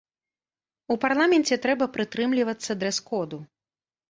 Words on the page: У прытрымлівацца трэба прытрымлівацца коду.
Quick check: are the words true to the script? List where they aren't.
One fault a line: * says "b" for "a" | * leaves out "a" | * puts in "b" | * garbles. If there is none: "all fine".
* says "парламенце" for "прытрымлівацца"
* puts in "дрэс"